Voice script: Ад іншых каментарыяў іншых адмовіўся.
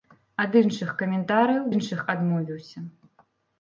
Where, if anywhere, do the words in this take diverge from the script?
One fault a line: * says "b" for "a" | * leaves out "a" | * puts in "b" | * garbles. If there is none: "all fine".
all fine